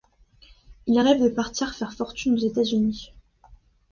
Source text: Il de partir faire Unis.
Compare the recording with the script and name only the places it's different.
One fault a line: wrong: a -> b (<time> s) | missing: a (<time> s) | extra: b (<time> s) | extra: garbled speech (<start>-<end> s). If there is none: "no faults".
extra: rêve (1.0 s)
extra: fortune aux États (1.9 s)